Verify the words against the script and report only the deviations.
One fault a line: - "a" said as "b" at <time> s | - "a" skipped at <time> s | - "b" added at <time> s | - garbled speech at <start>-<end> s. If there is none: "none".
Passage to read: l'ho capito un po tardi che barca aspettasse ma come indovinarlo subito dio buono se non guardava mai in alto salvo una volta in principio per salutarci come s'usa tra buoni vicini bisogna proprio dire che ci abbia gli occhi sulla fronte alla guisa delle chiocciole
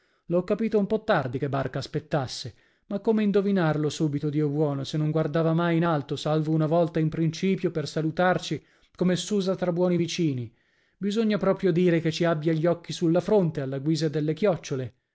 none